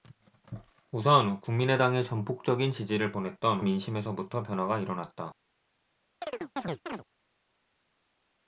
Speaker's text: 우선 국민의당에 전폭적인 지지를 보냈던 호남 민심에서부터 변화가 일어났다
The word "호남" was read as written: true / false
false